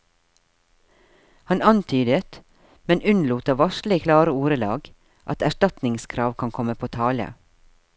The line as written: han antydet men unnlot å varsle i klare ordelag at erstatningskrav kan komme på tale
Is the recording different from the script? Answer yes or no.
no